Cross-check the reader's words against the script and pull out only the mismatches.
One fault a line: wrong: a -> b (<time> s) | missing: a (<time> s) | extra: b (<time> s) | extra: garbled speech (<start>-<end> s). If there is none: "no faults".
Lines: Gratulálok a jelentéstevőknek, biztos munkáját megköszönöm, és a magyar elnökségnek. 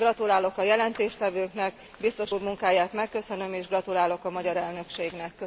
extra: úr (2.3 s)
extra: gratulálok (3.7 s)